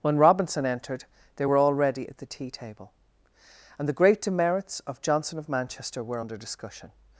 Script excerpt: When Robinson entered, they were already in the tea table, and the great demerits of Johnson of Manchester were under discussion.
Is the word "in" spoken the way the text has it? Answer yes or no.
no